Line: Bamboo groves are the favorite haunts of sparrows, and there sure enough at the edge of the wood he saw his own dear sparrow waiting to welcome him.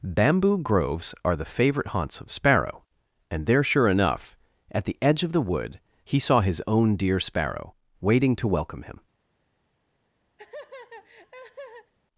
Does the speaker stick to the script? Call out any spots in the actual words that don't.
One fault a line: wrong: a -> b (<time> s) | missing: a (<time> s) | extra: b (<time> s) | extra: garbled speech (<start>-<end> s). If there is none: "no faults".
wrong: sparrows -> sparrow (2.3 s)